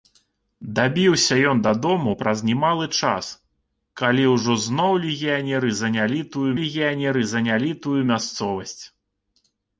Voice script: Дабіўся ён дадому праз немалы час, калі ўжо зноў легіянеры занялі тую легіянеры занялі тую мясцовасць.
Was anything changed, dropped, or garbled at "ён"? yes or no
no